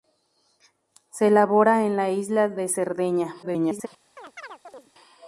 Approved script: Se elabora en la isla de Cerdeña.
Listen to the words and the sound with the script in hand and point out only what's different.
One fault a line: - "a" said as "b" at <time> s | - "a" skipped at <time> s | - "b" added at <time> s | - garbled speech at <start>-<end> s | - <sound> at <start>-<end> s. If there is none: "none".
- garbled speech at 3.4-3.9 s
- chirp at 4.2-4.9 s